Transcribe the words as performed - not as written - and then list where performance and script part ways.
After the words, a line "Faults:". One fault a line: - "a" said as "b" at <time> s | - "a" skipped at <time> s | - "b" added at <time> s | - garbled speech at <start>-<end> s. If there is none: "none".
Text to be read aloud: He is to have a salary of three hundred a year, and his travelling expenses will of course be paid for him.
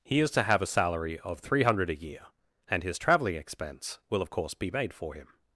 He is to have a salary of three hundred a year, and his travelling expense will of course be made for him.
Faults:
- "expenses" said as "expense" at 3.4 s
- "paid" said as "made" at 4.7 s